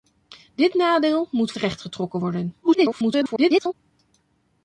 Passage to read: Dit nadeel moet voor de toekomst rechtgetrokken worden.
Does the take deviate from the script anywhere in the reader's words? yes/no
yes